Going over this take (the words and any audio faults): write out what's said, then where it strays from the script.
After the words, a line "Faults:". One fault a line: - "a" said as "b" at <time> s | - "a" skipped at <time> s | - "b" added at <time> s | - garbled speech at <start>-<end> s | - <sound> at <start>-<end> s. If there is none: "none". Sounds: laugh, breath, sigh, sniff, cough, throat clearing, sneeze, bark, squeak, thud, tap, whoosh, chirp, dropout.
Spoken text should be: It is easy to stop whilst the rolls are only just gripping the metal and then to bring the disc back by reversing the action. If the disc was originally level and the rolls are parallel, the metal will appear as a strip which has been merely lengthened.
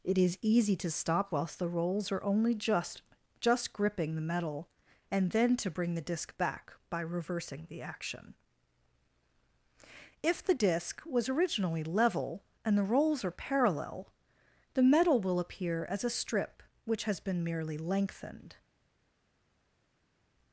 It is easy to stop whilst the rolls are only just just gripping the metal and then to bring the disc back by reversing the action. If the disc was originally level and the rolls are parallel, the metal will appear as a strip which has been merely lengthened.
Faults:
- "just" added at 3.4 s